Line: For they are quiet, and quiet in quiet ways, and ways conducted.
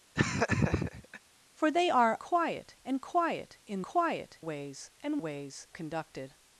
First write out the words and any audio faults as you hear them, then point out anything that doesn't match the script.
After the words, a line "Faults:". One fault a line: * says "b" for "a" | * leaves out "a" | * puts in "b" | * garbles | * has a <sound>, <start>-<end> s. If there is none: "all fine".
For they are quiet, and quiet in quiet ways, and ways conducted.
Faults:
* has a laugh, 0.1-1.2 s